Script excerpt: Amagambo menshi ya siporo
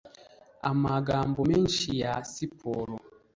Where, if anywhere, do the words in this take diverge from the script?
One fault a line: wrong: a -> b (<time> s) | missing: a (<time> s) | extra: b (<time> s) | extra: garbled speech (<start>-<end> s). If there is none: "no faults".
no faults